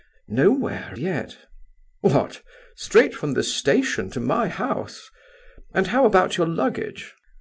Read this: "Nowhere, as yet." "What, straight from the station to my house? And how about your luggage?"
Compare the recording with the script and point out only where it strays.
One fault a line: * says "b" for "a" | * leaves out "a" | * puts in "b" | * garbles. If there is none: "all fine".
* leaves out "as"